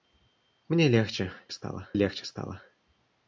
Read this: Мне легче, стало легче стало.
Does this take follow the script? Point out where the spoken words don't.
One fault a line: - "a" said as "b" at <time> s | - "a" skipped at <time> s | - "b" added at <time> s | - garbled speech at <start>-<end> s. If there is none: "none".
none